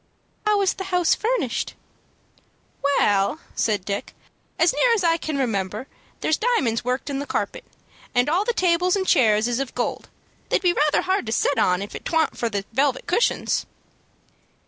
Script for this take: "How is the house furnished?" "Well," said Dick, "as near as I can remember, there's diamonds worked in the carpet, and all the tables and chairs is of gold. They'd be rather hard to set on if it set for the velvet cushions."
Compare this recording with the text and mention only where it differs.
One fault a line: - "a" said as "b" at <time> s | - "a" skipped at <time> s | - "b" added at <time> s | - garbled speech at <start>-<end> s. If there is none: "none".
- "set" said as "twan't" at 12.0 s